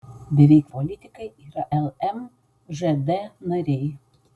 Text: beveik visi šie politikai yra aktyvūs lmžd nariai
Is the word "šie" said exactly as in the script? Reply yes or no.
no